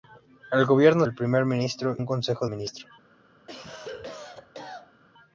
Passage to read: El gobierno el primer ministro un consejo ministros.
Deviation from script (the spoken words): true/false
false